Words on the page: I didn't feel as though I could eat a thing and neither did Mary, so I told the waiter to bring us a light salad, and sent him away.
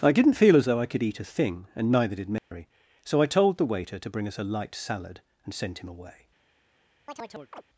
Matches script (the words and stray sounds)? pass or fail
fail